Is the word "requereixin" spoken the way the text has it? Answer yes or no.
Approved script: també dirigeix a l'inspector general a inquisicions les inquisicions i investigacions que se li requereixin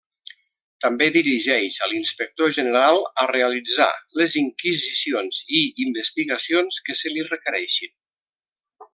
yes